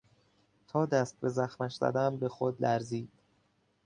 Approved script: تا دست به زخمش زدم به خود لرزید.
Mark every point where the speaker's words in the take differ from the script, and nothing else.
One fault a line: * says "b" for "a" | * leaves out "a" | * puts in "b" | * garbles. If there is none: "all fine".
all fine